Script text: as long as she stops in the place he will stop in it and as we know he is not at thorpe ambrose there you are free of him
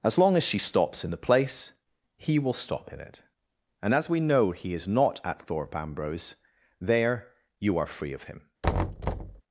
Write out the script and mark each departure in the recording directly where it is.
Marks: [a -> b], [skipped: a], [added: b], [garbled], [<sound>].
as long as she stops in the place he will stop in it and as we know he is not at thorpe ambrose there you are free of him [thud]